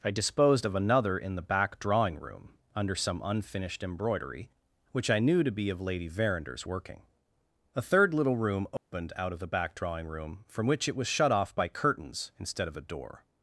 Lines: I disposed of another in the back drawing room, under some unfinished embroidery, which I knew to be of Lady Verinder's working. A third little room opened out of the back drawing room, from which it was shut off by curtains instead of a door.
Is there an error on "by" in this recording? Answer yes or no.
no